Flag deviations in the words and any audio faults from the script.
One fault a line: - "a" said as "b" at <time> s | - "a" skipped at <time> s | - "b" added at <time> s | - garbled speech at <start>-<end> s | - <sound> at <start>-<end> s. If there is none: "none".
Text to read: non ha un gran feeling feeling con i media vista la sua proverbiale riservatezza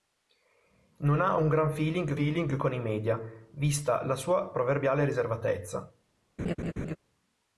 - laugh at 6.4-7.0 s